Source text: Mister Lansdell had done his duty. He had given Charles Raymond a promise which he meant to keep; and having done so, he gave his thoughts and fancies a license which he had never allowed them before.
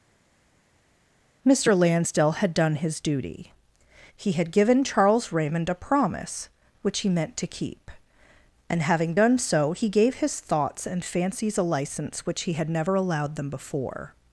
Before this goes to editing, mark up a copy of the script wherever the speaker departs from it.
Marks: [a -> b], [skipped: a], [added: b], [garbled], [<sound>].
Mister Lansdell had done his duty. He had given Charles Raymond a promise which he meant to keep; and having done so, he gave his thoughts and fancies a license which he had never allowed them before.